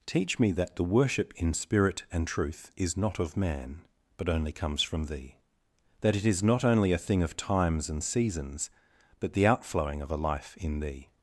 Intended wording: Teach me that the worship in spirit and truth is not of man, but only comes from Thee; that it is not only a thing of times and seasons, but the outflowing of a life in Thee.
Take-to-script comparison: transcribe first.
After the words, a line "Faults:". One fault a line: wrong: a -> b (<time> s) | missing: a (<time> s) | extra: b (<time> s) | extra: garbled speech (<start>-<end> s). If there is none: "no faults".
Teach me that the worship in spirit and truth is not of man, but only comes from Thee; that it is not only a thing of times and seasons, but the outflowing of a life in Thee.
Faults:
no faults